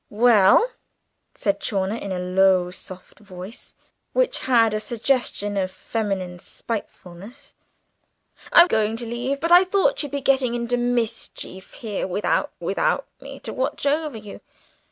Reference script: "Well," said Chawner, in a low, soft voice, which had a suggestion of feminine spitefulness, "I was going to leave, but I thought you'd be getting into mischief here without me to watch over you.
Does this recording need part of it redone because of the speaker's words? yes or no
yes